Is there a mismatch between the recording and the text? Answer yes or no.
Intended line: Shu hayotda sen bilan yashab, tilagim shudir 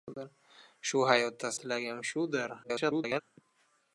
yes